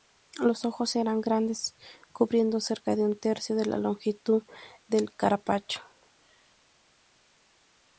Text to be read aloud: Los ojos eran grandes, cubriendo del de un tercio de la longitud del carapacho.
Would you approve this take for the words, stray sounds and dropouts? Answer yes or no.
no